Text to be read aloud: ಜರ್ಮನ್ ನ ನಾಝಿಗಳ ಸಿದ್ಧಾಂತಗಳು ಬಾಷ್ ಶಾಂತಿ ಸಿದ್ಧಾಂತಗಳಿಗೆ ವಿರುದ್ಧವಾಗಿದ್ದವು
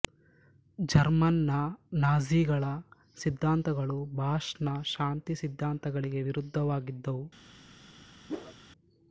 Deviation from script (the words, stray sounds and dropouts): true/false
true